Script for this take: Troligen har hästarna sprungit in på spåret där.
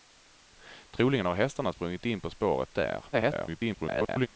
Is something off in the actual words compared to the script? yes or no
yes